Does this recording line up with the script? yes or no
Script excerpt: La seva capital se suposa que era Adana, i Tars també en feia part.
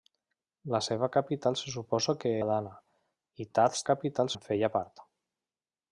no